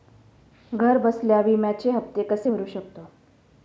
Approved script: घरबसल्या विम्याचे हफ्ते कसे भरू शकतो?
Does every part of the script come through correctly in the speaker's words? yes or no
yes